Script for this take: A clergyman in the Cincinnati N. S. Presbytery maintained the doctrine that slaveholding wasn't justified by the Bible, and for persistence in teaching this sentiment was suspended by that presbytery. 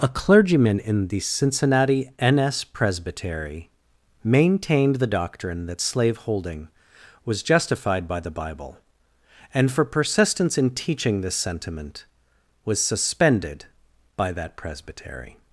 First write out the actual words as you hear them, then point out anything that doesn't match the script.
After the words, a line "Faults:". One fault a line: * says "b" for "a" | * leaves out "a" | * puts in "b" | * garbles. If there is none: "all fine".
A clergyman in the Cincinnati N. S. Presbytery maintained the doctrine that slaveholding was justified by the Bible, and for persistence in teaching this sentiment was suspended by that presbytery.
Faults:
* says "was" for "wasn't"